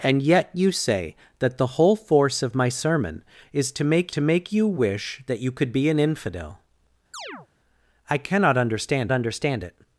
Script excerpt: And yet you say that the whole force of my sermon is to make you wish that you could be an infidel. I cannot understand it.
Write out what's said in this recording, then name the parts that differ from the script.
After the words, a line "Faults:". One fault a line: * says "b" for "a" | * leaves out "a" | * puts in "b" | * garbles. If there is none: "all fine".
And yet you say that the whole force of my sermon is to make to make you wish that you could be an infidel. I cannot understand understand it.
Faults:
* puts in "to make"
* puts in "understand"